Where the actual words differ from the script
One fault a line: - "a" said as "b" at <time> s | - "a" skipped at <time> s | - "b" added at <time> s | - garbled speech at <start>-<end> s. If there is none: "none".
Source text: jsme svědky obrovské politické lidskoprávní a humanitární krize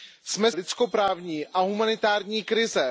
- "svědky obrovské politické" skipped at 0.5 s